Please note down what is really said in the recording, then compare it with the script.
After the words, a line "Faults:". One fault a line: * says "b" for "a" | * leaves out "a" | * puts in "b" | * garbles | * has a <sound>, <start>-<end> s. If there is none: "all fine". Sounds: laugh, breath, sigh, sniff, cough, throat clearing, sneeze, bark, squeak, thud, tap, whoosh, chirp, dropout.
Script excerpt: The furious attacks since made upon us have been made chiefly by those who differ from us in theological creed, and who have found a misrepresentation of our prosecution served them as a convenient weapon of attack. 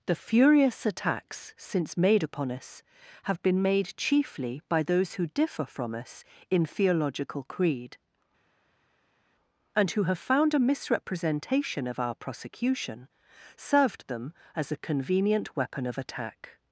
The furious attacks since made upon us have been made chiefly by those who differ from us in theological creed, and who have found a misrepresentation of our prosecution served them as a convenient weapon of attack.
Faults:
all fine